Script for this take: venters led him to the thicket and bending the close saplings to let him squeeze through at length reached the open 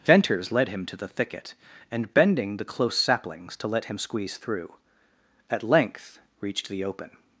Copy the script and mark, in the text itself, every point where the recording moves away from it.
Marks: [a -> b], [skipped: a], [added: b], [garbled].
venters led him to the thicket and bending the close saplings to let him squeeze through at length reached the open